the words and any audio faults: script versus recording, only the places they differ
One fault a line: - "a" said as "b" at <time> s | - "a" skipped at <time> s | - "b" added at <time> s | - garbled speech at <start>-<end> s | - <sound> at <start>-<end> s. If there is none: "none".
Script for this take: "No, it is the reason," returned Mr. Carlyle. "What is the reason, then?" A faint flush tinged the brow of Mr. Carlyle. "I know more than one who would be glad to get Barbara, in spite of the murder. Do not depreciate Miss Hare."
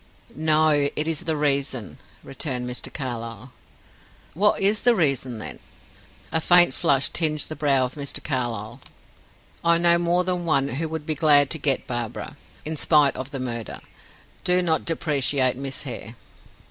none